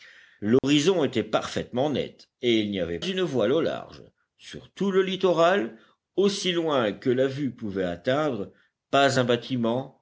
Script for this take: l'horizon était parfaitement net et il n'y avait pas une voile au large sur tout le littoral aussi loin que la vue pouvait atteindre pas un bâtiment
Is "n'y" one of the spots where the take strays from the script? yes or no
no